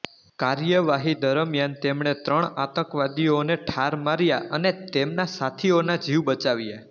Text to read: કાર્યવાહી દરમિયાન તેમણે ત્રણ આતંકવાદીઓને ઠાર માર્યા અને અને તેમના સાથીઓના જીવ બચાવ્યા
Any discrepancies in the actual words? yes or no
yes